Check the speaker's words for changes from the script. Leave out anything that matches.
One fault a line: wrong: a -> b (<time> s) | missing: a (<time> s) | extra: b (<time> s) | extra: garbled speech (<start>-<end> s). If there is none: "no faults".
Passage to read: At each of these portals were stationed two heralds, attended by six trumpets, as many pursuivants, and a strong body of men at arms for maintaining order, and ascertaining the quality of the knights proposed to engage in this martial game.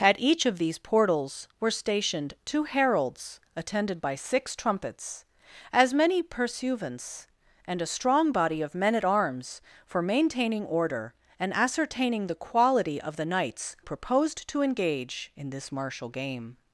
no faults